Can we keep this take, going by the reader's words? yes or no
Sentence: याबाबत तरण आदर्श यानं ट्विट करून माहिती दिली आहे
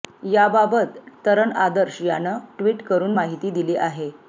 yes